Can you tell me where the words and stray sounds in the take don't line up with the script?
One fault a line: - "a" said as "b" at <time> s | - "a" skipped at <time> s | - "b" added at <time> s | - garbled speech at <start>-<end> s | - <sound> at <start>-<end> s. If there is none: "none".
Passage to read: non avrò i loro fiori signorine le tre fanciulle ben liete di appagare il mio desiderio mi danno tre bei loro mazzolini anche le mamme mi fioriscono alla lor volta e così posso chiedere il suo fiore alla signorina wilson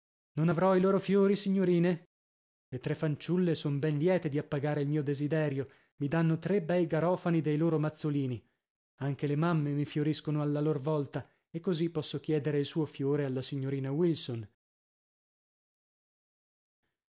- "son" added at 3.5 s
- "garofani dei" added at 6.9 s